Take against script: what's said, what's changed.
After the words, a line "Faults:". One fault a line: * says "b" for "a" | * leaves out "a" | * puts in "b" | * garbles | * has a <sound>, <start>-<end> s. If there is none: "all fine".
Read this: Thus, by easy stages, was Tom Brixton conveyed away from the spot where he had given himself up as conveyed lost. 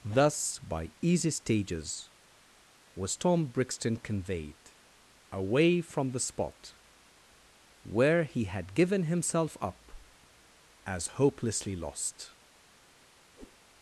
Thus, by easy stages, was Tom Brixton conveyed away from the spot where he had given himself up as hopelessly lost.
Faults:
* says "hopelessly" for "conveyed"
* has a whoosh, 13.4-13.6 s